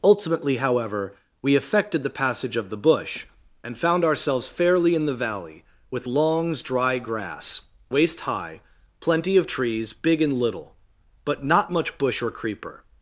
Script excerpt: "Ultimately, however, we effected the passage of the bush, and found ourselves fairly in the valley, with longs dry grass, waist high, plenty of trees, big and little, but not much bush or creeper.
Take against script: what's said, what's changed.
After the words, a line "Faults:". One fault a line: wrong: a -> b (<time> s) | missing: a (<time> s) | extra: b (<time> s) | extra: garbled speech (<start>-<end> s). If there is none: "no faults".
"Ultimately, however, we effected the passage of the bush, and found ourselves fairly in the valley, with longs dry grass, waist high, plenty of trees, big and little, but not much bush or creeper.
Faults:
no faults